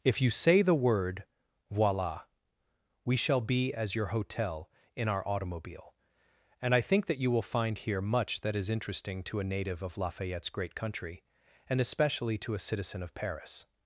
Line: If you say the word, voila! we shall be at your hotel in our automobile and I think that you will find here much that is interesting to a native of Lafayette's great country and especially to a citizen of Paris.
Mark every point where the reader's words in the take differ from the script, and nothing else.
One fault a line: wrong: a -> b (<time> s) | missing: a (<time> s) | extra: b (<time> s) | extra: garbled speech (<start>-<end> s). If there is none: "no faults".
wrong: at -> as (3.7 s)